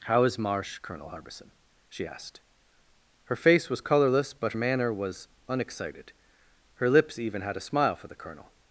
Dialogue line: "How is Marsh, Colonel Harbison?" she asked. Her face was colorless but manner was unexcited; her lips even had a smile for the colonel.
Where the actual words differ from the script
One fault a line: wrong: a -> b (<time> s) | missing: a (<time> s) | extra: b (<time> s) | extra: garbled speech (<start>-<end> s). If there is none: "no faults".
no faults